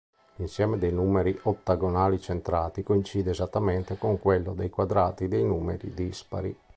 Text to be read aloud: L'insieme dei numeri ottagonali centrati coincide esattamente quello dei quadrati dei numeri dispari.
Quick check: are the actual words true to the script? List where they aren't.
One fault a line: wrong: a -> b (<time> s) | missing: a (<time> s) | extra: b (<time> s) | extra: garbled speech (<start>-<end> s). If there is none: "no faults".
extra: con (4.0 s)